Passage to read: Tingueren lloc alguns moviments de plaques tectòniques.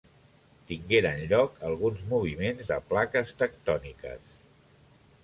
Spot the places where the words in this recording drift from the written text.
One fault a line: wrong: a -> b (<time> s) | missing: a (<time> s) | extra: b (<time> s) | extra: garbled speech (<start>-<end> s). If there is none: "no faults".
no faults